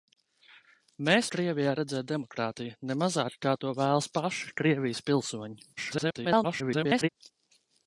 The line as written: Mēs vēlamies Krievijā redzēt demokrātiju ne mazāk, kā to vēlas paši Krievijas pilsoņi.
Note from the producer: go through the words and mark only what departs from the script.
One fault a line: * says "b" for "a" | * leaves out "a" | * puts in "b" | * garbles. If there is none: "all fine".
* leaves out "vēlamies"
* garbles